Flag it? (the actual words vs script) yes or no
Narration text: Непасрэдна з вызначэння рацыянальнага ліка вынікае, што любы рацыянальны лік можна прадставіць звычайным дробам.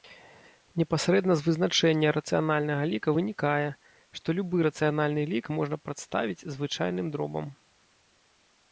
no